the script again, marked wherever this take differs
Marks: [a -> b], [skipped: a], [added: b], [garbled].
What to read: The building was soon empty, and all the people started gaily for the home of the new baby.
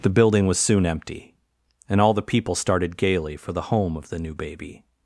The building was soon empty, and all the people started gaily for the home of the new baby.